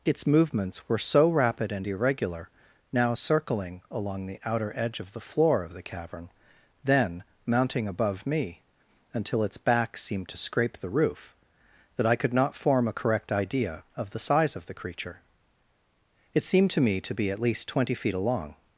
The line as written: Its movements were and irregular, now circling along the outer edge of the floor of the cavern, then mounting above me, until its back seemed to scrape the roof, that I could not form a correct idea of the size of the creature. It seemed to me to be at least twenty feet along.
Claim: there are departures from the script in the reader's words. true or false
true